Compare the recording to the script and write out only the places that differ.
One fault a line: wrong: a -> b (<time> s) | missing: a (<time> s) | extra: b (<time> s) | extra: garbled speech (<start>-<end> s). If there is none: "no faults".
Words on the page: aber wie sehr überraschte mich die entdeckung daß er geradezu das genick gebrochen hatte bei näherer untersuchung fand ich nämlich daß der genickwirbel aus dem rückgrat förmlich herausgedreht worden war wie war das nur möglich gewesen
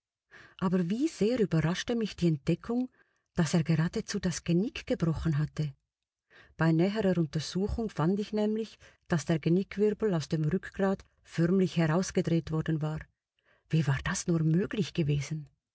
no faults